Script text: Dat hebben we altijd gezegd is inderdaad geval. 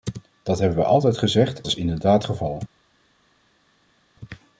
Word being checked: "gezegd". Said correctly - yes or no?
yes